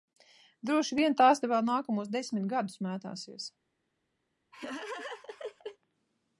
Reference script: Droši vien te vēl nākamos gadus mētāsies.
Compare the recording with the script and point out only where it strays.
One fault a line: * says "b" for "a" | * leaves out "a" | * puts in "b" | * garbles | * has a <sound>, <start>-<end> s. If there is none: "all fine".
* puts in "tās"
* puts in "desmit"
* has a laugh, 4.5-5.8 s